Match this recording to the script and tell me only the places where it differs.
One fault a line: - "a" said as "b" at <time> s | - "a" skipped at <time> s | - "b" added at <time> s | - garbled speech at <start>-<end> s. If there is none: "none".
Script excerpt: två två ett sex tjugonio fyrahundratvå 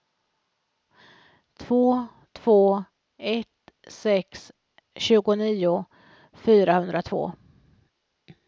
none